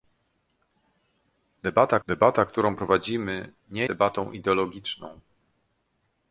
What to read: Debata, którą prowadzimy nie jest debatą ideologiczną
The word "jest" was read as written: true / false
false